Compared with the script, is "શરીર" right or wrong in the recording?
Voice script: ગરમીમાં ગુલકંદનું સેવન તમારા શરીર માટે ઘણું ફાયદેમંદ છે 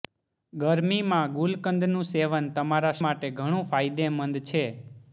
wrong